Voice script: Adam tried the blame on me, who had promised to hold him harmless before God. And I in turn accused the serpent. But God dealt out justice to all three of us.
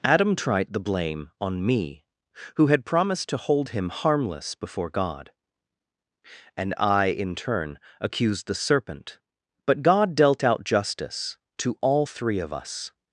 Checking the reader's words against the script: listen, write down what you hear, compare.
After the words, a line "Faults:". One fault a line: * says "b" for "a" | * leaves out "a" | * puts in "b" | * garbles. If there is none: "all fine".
Adam tried the blame on me, who had promised to hold him harmless before God. And I in turn accused the serpent. But God dealt out justice to all three of us.
Faults:
all fine